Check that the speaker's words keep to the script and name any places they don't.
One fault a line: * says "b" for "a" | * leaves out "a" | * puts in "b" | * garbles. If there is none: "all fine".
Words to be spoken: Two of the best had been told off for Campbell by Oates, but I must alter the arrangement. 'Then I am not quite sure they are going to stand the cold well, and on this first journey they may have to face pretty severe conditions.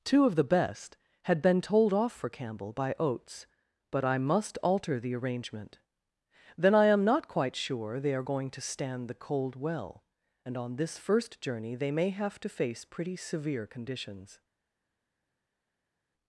all fine